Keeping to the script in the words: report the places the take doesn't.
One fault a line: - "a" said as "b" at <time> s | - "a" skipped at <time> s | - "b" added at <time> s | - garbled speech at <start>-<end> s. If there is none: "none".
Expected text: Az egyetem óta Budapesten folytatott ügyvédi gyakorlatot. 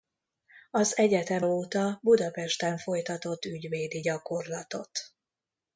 none